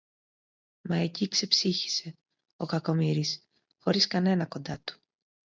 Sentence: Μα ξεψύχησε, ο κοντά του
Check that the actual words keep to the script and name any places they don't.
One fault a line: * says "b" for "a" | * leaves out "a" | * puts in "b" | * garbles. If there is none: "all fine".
* puts in "εκεί"
* puts in "κακομοίρης χωρίς κανένα"